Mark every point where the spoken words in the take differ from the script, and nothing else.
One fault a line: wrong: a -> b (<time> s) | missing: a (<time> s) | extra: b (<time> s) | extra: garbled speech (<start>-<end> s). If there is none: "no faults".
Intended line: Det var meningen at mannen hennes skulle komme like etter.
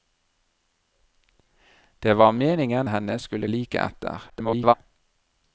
missing: at mannen (2.9 s)
missing: komme (3.5 s)
extra: garbled speech (4.3-4.7 s)